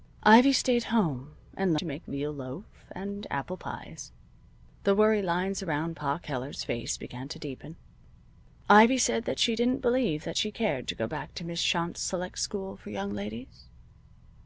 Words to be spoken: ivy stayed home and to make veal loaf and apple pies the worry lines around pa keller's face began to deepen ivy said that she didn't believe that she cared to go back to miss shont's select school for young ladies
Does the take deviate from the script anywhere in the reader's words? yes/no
no